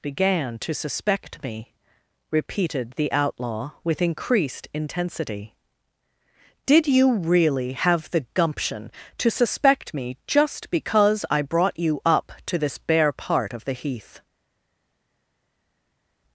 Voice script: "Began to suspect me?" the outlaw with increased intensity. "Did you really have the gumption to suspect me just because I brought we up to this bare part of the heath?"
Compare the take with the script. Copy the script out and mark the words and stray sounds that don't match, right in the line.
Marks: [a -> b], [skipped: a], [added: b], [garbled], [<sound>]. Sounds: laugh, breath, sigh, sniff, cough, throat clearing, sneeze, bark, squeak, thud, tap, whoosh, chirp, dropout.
"Began to suspect me?" [added: repeated] the outlaw with increased intensity. "Did you really have the gumption to suspect me just because I brought [we -> you] up to this bare part of the heath?"